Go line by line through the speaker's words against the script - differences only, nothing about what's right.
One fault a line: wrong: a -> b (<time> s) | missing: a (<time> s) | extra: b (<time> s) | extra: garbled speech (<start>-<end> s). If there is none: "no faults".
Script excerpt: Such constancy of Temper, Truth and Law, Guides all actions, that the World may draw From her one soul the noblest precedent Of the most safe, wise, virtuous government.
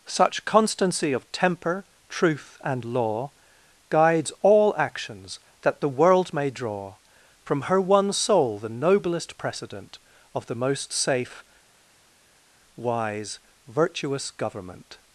no faults